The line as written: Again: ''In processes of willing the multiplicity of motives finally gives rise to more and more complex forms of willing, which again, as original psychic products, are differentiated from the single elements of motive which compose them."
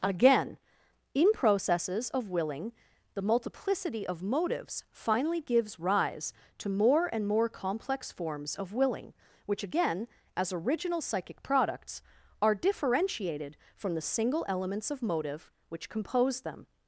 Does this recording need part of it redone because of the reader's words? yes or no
no